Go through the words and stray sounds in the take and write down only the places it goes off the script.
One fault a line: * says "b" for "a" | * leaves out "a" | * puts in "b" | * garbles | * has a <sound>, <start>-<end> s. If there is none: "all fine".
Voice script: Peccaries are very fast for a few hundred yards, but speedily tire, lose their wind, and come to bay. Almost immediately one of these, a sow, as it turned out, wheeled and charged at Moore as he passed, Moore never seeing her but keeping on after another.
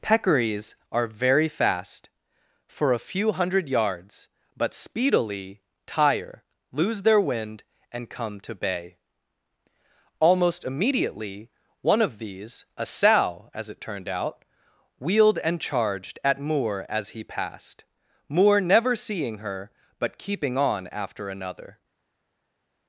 all fine